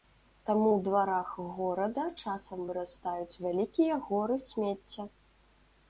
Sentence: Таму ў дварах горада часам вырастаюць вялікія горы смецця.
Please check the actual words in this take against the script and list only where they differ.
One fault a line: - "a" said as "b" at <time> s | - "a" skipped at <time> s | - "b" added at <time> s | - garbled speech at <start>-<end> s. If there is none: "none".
none